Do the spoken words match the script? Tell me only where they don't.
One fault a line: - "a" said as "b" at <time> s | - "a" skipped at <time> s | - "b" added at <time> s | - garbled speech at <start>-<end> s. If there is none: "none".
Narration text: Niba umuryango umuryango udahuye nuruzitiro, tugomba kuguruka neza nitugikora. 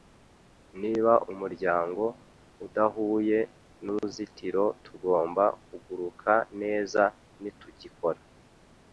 - "umuryango" skipped at 2.0 s